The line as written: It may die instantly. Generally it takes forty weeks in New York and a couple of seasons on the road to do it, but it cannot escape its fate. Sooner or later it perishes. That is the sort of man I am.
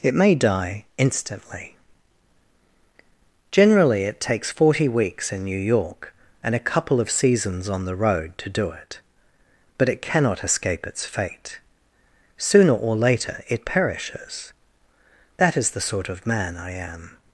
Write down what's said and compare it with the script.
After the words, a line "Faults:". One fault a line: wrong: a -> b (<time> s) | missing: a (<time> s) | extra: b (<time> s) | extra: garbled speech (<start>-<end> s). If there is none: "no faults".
It may die instantly. Generally it takes forty weeks in New York and a couple of seasons on the road to do it, but it cannot escape its fate. Sooner or later it perishes. That is the sort of man I am.
Faults:
no faults